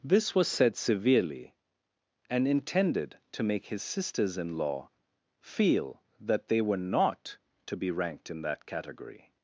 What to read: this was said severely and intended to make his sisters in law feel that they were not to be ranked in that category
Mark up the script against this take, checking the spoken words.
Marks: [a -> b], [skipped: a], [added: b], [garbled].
this was said severely and intended to make his sisters in law feel that they were not to be ranked in that category